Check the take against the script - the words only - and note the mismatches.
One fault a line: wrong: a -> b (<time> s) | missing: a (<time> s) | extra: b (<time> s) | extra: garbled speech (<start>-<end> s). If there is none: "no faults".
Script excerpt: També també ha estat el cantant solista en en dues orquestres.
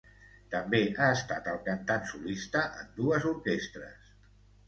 missing: també (0.8 s)
missing: en (2.9 s)